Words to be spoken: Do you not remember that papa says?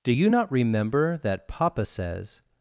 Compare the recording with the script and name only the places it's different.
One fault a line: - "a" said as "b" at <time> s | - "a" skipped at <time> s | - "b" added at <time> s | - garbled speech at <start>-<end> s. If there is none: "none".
none